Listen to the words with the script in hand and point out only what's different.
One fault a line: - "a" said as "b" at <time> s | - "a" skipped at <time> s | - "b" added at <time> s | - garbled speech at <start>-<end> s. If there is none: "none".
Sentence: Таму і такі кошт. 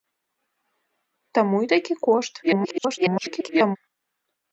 - garbled speech at 2.4-3.8 s